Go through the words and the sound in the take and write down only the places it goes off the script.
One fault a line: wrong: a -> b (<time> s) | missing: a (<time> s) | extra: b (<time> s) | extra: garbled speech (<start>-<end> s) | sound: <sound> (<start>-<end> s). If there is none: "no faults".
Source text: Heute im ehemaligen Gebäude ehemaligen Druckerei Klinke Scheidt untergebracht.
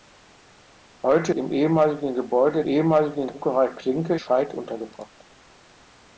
no faults